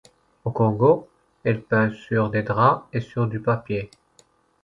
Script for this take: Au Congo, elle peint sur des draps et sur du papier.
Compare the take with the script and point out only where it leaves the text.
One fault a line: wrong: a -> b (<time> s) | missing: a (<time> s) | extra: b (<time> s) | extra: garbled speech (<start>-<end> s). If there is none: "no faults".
no faults